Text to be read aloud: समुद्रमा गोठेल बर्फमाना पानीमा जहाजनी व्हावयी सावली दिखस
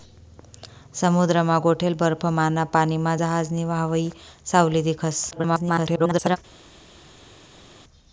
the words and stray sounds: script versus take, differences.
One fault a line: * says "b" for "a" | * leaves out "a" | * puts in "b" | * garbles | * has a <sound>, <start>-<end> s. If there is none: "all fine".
* garbles